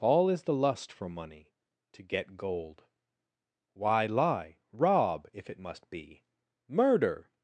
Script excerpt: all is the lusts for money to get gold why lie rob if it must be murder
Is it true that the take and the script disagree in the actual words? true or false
true